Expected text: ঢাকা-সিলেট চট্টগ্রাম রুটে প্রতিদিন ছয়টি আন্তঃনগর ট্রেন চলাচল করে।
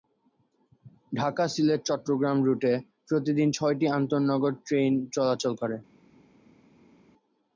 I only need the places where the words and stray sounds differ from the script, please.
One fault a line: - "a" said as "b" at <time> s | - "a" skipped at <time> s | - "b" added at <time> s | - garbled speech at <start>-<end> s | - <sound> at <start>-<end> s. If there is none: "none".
none